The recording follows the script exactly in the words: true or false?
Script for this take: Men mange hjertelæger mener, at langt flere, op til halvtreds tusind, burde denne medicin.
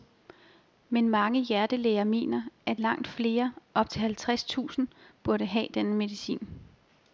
false